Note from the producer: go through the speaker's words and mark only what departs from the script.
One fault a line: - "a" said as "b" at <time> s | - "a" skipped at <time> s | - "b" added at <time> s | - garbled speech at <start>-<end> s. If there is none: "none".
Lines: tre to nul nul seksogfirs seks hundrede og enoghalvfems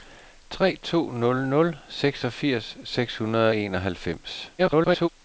- garbled speech at 4.6-5.1 s